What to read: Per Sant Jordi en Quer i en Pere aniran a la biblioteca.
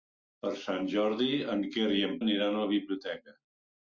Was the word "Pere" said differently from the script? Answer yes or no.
yes